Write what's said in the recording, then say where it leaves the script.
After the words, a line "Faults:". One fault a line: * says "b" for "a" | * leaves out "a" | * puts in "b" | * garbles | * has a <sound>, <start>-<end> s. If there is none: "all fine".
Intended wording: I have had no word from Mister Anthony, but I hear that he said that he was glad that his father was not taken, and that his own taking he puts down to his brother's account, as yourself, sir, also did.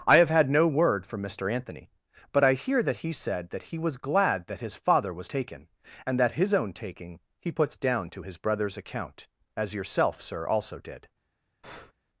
I have had no word from Mister Anthony, but I hear that he said that he was glad that his father was taken, and that his own taking he puts down to his brother's account, as yourself, sir, also did.
Faults:
* leaves out "not"
* has a breath, 11.6-11.9 s